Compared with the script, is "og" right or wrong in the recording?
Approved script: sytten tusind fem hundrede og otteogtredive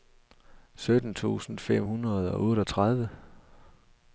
right